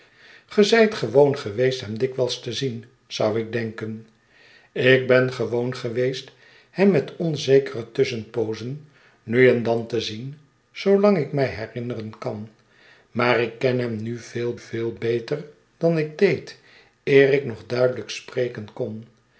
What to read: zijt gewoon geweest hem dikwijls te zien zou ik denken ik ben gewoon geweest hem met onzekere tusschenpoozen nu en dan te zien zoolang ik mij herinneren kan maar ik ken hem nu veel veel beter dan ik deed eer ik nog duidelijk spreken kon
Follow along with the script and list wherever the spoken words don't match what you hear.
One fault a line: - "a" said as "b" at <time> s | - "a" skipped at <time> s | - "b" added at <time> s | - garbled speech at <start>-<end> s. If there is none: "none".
none